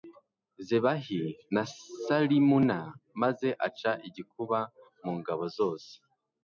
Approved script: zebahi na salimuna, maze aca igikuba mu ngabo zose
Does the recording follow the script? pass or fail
pass